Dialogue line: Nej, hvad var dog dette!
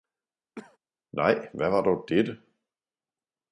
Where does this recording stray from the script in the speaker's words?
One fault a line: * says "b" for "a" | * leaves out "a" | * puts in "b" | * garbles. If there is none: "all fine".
all fine